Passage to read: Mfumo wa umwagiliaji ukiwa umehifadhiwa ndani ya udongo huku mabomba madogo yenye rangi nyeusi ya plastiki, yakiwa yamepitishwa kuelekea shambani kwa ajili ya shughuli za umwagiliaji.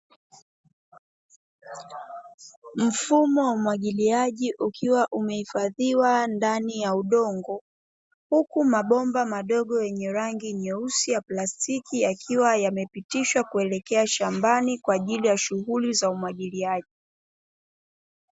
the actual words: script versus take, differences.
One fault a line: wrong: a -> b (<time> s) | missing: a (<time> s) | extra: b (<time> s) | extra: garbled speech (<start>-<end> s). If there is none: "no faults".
no faults